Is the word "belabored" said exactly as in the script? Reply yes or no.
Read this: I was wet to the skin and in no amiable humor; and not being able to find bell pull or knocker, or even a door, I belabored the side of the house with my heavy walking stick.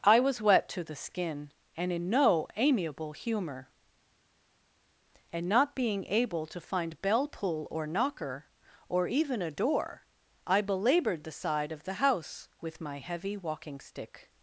yes